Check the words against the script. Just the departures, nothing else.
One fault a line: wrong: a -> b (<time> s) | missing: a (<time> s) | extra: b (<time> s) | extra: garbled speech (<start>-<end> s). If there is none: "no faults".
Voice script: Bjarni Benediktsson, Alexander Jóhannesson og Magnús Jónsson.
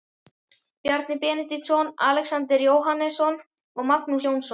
no faults